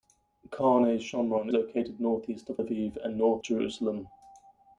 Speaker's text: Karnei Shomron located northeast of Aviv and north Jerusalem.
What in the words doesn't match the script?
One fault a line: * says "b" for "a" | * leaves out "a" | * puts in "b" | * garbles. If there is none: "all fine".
all fine